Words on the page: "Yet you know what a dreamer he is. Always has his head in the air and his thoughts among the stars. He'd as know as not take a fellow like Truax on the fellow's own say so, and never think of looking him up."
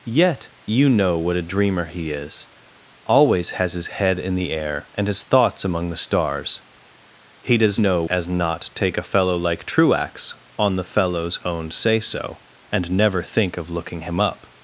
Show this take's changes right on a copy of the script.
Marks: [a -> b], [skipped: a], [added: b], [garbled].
"Yet you know what a dreamer he is. Always has his head in the air and his thoughts among the stars. He'd as know as not take a fellow like Truax on the fellow's own say so, and never think of looking him up."